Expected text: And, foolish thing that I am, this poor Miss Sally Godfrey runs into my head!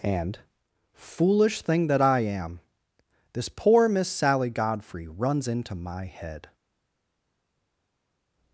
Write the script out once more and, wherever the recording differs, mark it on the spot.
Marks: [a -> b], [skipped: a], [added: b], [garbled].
And, foolish thing that I am, this poor Miss Sally Godfrey runs into my head!